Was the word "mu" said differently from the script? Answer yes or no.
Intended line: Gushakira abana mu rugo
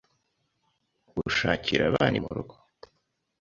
no